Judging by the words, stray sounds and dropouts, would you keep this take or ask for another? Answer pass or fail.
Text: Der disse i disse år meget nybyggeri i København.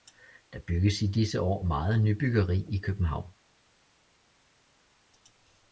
fail